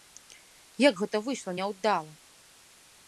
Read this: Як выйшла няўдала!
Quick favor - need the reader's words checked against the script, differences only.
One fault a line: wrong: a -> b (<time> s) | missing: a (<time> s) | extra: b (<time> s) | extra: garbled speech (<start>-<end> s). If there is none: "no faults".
extra: гэта (1.0 s)